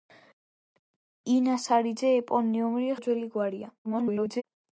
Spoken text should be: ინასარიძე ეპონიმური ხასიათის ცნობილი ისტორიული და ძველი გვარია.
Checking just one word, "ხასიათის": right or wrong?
wrong